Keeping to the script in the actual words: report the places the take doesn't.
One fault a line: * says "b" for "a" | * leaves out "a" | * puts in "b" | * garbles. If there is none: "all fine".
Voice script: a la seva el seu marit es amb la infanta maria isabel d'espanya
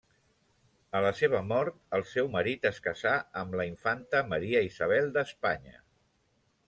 * puts in "mort"
* puts in "casà"